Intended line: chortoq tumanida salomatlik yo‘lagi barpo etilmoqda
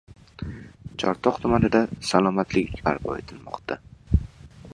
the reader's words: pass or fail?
fail